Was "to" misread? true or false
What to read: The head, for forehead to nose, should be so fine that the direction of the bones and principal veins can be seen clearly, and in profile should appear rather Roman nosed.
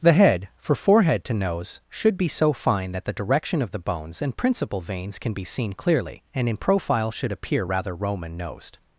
false